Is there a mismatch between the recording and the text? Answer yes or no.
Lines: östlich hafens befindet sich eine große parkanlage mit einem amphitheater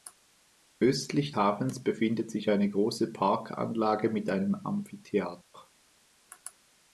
no